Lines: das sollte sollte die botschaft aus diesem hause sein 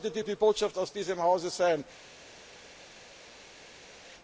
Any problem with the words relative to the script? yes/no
no